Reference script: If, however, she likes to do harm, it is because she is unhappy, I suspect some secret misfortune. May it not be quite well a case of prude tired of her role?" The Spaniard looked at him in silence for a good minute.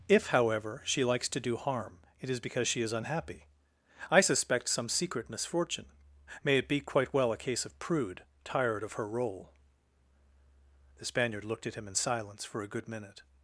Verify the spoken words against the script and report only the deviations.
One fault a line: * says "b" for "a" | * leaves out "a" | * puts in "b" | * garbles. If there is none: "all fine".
* leaves out "not"